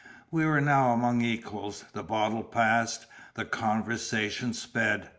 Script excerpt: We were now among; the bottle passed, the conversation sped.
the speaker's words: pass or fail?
fail